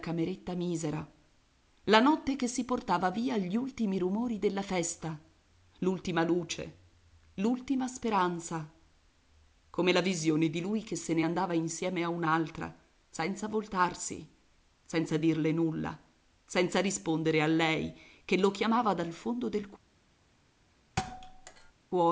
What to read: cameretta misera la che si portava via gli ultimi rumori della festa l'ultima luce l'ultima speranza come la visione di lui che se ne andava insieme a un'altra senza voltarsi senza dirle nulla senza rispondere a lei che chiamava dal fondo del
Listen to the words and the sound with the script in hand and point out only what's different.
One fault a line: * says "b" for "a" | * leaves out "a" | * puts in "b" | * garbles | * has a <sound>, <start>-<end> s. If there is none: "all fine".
* puts in "notte"
* puts in "lo"
* has a thud, 21.0-21.7 s